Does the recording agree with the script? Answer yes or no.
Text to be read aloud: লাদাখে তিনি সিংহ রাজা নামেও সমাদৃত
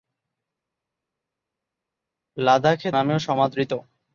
no